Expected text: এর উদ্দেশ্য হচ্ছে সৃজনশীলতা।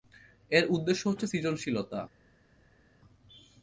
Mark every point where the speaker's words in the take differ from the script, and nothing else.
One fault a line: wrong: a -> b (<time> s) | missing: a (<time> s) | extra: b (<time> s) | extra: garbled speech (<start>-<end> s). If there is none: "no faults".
no faults